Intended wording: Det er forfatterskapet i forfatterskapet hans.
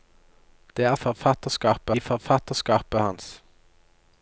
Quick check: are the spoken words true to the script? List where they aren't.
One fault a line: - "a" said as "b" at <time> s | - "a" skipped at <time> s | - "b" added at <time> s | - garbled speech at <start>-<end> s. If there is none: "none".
none